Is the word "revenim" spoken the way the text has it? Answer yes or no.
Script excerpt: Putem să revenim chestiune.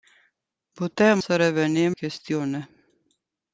yes